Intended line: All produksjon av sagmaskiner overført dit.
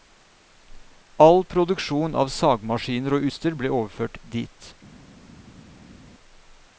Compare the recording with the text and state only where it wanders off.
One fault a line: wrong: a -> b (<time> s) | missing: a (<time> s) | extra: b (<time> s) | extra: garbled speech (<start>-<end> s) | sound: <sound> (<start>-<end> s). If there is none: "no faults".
extra: og utstyr ble (3.2 s)